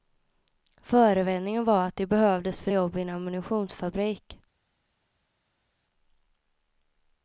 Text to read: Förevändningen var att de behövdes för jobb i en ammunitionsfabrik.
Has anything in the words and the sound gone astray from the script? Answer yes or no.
no